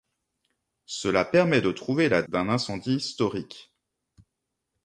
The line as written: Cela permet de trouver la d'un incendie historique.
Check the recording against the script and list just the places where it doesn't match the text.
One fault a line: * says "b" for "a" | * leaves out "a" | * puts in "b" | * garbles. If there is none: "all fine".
all fine